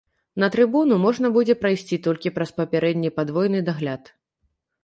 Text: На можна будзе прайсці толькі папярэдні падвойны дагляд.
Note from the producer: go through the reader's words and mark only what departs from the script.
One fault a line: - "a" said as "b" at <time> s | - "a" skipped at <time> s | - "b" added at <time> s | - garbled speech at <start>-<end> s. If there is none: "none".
- "трыбуну" added at 0.5 s
- "праз" added at 2.4 s